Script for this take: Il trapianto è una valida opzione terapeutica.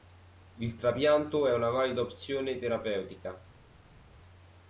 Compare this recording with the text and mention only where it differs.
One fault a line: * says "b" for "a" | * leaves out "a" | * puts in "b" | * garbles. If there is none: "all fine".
all fine